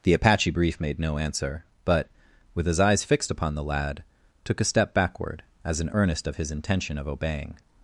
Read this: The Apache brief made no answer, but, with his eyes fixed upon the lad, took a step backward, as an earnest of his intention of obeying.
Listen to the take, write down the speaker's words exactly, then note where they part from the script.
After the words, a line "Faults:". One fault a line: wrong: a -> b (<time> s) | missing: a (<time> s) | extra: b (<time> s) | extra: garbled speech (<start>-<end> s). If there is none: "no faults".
The Apache brief made no answer, but, with his eyes fixed upon the lad, took a step backward, as an earnest of his intention of obeying.
Faults:
no faults